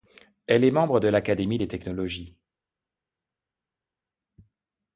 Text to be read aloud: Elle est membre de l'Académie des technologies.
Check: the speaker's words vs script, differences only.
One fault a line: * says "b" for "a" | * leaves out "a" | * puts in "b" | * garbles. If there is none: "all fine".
all fine